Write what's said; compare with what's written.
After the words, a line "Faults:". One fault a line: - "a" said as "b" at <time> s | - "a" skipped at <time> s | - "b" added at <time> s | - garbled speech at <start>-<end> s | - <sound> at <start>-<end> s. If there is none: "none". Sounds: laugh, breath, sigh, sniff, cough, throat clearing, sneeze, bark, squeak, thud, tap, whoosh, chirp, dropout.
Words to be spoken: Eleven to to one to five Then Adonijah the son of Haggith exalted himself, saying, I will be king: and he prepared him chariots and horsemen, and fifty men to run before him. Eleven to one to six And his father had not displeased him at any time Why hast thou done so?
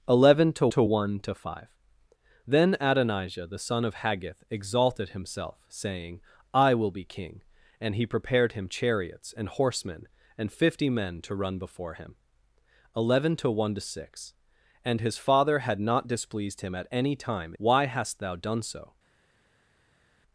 Eleven to to one to five Then Adonijah the son of Haggith exalted himself, saying, I will be king: and he prepared him chariots and horsemen, and fifty men to run before him. Eleven to one to six And his father had not displeased him at any time Why hast thou done so?
Faults:
none